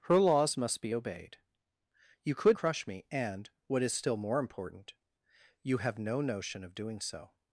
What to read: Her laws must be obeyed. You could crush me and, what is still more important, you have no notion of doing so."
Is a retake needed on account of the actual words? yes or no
no